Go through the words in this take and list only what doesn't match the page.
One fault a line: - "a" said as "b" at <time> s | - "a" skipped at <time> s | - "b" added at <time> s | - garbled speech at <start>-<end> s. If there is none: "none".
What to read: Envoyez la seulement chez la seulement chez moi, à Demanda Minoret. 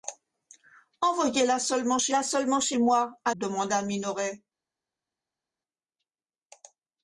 none